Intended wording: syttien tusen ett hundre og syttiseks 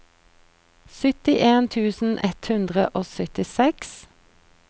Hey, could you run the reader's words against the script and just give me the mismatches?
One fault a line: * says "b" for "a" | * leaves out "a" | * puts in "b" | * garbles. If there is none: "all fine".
all fine